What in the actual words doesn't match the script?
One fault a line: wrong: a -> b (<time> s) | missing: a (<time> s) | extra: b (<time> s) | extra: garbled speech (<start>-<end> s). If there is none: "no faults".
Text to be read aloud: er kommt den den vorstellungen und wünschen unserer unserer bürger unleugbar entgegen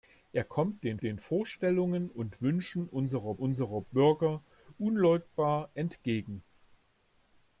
no faults